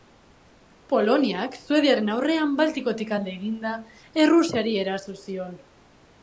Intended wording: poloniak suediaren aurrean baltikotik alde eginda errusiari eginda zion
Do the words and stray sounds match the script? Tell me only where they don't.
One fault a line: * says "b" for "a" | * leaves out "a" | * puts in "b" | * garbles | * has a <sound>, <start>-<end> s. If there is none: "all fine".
* says "eraso" for "eginda"